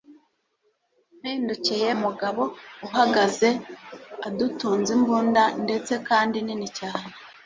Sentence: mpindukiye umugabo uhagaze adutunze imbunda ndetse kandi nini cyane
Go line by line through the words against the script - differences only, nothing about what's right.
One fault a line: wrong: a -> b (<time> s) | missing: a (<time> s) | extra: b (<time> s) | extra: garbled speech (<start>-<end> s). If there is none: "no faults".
no faults